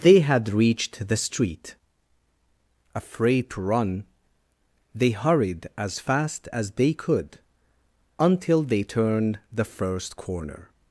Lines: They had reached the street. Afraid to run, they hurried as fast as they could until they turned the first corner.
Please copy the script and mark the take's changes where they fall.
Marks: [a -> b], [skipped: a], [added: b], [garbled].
They had reached the street. Afraid to run, they hurried as fast as they could until they turned the first corner.